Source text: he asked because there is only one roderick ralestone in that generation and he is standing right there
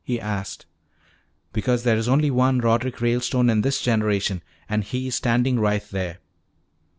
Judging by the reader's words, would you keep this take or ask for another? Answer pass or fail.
fail